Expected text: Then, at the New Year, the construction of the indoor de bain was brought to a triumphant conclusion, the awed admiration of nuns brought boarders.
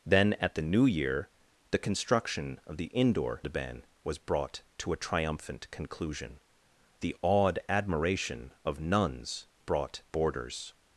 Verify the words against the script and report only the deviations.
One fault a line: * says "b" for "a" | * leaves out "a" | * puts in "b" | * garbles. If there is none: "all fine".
all fine